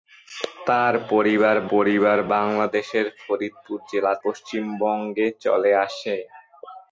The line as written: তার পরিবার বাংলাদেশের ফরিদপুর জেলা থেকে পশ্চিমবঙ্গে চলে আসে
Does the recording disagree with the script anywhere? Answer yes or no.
yes